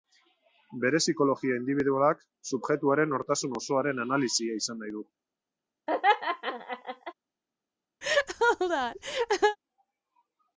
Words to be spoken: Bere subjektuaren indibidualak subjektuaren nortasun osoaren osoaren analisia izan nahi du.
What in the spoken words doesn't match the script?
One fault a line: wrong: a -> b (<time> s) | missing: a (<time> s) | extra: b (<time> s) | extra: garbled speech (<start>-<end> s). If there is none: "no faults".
wrong: subjektuaren -> psikologia (1.0 s)
missing: osoaren (4.0 s)